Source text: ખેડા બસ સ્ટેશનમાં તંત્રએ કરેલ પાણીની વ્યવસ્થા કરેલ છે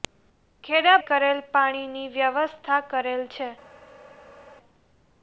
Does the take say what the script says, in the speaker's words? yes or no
no